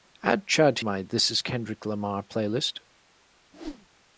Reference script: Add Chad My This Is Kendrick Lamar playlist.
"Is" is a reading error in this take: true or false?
false